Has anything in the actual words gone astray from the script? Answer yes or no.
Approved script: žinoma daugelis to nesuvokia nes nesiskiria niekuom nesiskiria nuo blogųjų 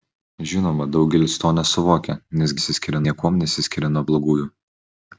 no